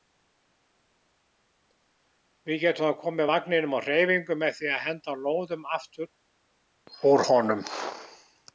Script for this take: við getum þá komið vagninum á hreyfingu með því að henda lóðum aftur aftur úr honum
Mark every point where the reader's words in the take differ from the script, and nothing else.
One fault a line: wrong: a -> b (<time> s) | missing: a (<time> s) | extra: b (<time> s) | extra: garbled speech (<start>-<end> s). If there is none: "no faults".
missing: aftur (6.1 s)